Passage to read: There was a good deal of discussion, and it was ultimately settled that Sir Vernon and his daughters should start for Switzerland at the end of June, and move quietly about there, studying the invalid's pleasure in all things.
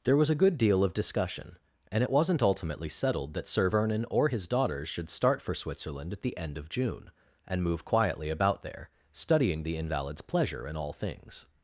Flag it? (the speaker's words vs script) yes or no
yes